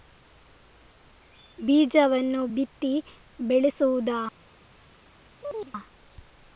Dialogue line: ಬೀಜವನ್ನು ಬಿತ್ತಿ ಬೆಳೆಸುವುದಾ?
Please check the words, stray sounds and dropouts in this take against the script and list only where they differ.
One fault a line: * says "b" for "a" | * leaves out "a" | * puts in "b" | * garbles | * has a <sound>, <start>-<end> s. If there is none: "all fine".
* has a chirp, 5.4-5.7 s